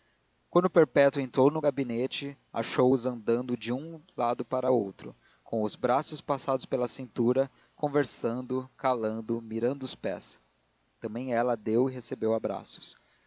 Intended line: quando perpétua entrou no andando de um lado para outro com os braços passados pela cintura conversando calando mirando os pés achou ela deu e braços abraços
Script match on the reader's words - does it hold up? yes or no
no